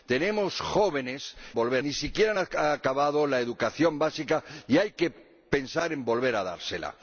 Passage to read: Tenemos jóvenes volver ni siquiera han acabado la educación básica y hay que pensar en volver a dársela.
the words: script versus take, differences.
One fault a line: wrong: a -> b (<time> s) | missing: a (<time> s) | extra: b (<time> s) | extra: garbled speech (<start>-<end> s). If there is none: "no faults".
no faults